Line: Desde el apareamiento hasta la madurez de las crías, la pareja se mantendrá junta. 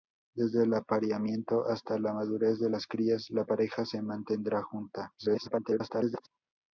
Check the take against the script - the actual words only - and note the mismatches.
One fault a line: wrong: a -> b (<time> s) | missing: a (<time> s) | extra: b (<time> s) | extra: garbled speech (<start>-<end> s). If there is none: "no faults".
extra: garbled speech (5.2-6.3 s)